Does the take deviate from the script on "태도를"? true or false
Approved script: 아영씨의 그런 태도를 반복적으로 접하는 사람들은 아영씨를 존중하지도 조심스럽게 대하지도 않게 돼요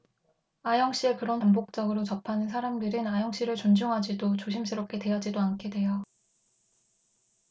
true